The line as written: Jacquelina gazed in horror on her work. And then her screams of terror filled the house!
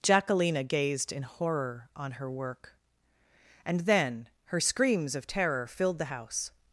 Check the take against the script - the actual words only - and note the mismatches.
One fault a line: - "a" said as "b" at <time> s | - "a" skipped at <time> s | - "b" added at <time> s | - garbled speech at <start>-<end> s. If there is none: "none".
none